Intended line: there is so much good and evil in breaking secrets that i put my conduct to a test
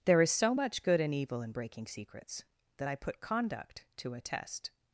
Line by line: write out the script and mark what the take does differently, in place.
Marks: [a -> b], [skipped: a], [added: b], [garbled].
there is so much good and evil in breaking secrets that i put [skipped: my] conduct to a test